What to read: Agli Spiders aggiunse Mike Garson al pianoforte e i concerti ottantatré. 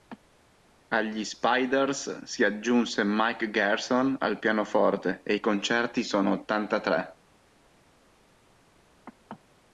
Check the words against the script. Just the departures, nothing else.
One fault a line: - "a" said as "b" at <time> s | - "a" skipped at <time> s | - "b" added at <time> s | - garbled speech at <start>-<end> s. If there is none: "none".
- "si" added at 2.2 s
- "sono" added at 6.0 s